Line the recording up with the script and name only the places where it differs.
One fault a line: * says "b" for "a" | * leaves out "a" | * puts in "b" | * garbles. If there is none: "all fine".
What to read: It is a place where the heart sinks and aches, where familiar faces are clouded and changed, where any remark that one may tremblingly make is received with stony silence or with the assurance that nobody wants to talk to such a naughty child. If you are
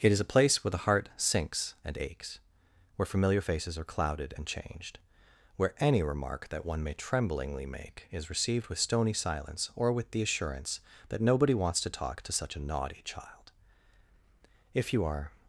all fine